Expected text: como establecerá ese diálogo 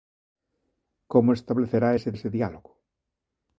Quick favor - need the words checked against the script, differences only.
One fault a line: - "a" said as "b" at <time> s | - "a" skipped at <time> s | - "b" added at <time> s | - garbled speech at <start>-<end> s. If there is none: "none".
- "ese" added at 2.2 s